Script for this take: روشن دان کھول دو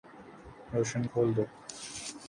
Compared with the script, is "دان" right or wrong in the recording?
wrong